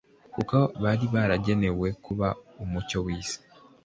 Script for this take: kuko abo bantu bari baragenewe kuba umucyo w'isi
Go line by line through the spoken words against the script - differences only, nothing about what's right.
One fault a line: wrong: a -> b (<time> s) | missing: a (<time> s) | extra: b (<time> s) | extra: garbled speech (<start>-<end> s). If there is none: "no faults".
missing: abo bantu (0.6 s)